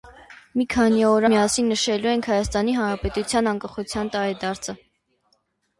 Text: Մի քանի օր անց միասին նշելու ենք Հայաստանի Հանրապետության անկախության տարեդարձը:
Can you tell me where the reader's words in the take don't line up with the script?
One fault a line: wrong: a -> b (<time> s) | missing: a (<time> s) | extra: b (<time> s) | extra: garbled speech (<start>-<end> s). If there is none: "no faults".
missing: անց (1.2 s)